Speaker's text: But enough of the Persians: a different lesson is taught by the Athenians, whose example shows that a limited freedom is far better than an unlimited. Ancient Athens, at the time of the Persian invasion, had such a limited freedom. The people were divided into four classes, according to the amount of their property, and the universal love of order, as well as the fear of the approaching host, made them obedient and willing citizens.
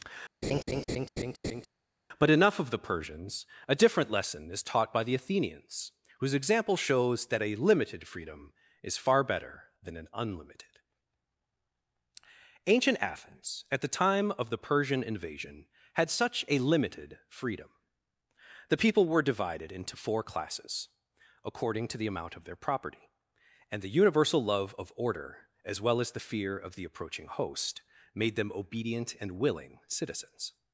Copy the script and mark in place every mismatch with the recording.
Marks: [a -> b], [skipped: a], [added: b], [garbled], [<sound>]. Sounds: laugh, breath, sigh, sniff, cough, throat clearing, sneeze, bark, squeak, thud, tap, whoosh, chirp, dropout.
[laugh] But enough of the Persians: a different lesson is taught by the Athenians, whose example shows that a limited freedom is far better than an unlimited. Ancient Athens, at the time of the Persian invasion, had such a limited freedom. The people were divided into four classes, according to the amount of their property, and the universal love of order, as well as the fear of the approaching host, made them obedient and willing citizens.